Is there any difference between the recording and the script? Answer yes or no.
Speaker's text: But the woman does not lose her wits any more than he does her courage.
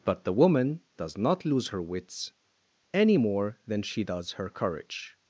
yes